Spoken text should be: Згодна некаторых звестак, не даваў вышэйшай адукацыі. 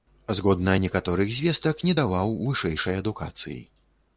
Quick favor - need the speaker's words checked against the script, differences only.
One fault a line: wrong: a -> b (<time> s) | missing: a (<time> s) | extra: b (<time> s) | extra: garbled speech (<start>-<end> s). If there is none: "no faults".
no faults